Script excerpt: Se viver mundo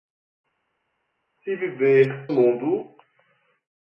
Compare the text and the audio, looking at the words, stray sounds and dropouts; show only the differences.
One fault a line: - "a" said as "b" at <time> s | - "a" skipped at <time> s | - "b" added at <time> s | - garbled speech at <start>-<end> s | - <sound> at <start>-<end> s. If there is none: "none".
none